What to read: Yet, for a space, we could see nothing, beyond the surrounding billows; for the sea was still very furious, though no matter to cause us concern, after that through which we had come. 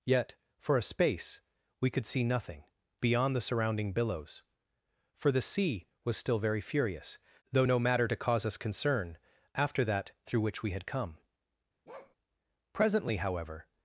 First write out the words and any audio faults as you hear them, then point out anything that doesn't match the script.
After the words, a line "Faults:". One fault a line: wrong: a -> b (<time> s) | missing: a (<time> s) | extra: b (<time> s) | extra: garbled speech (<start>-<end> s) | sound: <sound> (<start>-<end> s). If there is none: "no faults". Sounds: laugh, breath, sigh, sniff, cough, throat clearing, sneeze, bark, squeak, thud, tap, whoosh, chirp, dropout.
Yet, for a space, we could see nothing, beyond the surrounding billows; for the sea was still very furious, though no matter to cause us concern, after that through which we had come. Presently, however
Faults:
sound: bark (11.9-12.2 s)
extra: Presently however (12.7 s)